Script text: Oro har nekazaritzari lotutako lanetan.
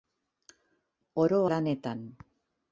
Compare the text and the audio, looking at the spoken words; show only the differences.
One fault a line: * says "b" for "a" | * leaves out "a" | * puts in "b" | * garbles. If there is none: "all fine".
* leaves out "har nekazaritzari lotutako"